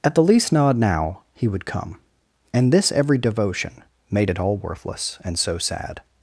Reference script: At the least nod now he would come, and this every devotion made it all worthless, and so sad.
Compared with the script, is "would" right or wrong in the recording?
right